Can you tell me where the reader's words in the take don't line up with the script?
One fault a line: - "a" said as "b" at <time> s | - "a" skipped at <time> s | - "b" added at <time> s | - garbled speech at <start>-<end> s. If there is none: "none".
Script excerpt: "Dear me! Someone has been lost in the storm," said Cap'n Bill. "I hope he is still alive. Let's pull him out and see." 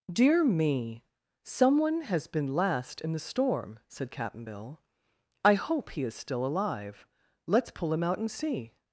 - "lost" said as "last" at 2.5 s